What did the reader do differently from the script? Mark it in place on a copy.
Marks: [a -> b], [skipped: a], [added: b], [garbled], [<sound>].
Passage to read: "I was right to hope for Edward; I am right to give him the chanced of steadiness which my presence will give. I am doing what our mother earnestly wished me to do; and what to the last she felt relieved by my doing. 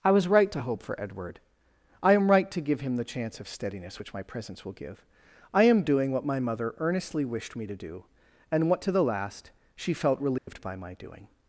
"I was right to hope for Edward; I am right to give him the [chanced -> chance] of steadiness which my presence will give. I am doing what [our -> my] mother earnestly wished me to do; and what to the last she felt relieved [dropout] by my doing.